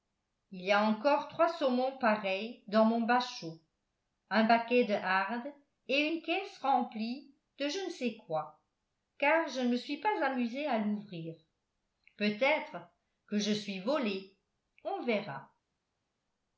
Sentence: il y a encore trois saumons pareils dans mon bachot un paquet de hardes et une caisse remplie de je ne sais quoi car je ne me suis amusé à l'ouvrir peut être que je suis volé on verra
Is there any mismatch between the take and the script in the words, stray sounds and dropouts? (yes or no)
yes